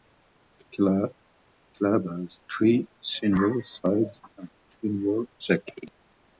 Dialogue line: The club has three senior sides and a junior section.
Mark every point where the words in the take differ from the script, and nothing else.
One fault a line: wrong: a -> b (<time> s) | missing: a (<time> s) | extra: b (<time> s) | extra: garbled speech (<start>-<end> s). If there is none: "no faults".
no faults